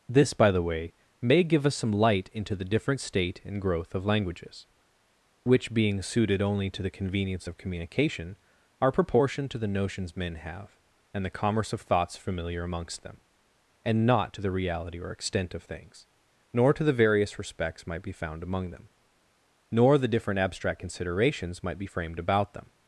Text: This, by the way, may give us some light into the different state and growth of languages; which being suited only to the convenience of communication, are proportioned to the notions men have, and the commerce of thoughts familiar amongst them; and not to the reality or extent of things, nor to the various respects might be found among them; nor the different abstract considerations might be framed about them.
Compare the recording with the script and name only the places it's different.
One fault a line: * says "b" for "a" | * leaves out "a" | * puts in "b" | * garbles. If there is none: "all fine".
all fine